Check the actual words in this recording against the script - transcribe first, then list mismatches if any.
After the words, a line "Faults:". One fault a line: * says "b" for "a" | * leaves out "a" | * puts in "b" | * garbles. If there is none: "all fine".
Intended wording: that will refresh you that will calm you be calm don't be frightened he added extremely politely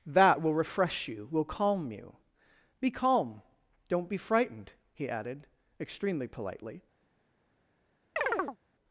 that will refresh you will calm you be calm don't be frightened he added extremely politely
Faults:
* leaves out "that"